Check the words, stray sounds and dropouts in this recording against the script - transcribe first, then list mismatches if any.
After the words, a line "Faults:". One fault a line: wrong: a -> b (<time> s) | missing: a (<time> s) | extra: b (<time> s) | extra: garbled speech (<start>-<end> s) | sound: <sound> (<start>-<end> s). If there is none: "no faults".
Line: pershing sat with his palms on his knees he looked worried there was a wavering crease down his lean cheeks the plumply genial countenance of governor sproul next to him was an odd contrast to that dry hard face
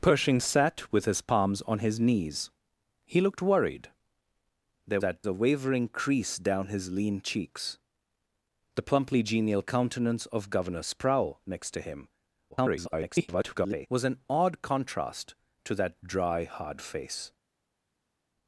pershing sat with his palms on his knees he looked worried there that a wavering crease down his lean cheeks the plumply genial countenance of governor sproul next to him [garbled] was an odd contrast to that dry hard face
Faults:
wrong: was -> that (5.0 s)
extra: garbled speech (12.5-13.9 s)